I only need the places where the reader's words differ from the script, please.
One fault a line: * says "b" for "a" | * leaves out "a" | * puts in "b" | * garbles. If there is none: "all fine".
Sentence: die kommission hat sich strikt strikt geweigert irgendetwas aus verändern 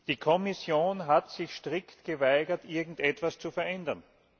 * leaves out "strikt"
* says "zu" for "aus"